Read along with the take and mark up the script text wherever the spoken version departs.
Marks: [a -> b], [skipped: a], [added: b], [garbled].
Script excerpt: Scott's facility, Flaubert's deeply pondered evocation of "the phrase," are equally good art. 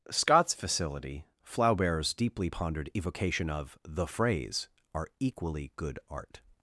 Scott's facility, Flaubert's deeply pondered evocation of "the phrase," are equally good art.